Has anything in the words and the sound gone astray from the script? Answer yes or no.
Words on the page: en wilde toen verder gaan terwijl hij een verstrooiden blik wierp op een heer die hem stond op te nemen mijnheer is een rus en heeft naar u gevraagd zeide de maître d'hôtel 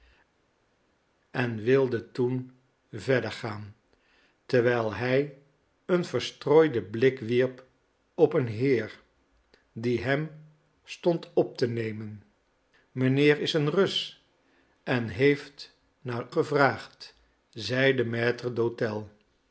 yes